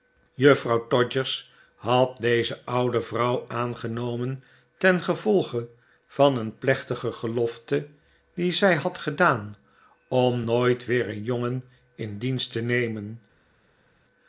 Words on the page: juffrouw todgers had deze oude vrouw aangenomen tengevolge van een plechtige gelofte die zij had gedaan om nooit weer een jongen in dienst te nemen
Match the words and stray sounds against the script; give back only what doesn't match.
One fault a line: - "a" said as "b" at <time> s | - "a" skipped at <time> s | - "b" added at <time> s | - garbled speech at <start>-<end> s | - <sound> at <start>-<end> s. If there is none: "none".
none